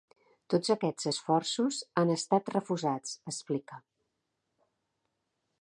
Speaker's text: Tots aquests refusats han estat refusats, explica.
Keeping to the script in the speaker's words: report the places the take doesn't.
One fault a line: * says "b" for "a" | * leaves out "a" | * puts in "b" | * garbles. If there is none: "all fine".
* says "esforços" for "refusats"